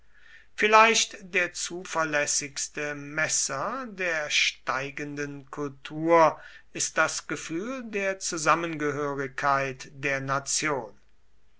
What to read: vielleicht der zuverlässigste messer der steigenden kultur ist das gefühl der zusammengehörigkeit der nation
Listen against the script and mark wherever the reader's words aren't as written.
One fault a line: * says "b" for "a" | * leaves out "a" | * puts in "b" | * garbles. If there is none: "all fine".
all fine